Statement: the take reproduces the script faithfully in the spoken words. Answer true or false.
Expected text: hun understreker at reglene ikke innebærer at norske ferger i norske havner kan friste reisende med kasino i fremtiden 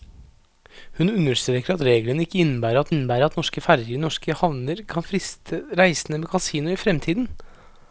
false